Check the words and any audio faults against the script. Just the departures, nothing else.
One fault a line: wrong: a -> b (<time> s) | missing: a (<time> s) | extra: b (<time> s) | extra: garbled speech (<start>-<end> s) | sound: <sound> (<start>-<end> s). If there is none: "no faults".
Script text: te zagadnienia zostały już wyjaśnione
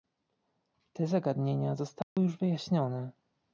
sound: dropout (2.0-2.2 s)